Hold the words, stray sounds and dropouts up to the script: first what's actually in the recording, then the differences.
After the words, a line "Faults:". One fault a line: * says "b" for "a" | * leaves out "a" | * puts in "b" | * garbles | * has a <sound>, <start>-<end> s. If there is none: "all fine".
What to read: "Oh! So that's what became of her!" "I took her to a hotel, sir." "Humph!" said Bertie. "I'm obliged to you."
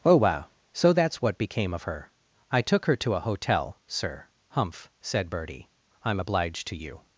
"Oh! wow So that's what became of her!" "I took her to a hotel, sir." "Humph!" said Bertie. "I'm obliged to you."
Faults:
* puts in "wow"